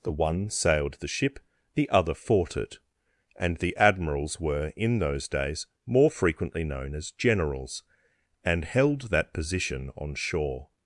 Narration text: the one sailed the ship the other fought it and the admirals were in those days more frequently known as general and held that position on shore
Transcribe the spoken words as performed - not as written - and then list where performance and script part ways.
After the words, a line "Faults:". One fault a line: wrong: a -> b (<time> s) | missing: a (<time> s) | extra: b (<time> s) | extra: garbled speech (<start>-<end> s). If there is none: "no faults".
the one sailed the ship the other fought it and the admirals were in those days more frequently known as generals and held that position on shore
Faults:
wrong: general -> generals (7.1 s)